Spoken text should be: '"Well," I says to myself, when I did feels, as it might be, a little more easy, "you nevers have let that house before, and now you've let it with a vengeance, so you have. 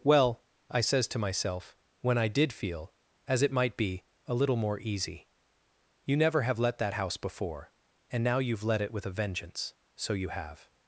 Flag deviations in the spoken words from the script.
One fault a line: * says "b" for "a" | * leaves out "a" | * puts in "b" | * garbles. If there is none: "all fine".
* says "feel" for "feels"
* says "never" for "nevers"